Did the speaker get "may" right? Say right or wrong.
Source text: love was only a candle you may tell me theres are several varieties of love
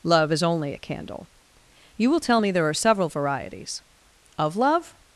wrong